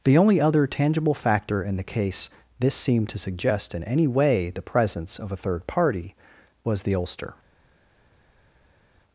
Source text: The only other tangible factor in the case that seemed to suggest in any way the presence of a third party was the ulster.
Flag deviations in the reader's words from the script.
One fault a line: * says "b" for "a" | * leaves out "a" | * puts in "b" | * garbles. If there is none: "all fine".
* says "this" for "that"